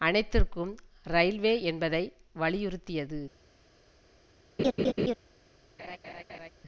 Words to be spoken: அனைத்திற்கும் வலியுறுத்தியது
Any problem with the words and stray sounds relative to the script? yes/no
yes